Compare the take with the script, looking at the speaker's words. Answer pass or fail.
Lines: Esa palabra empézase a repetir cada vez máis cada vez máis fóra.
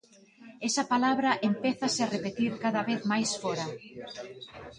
fail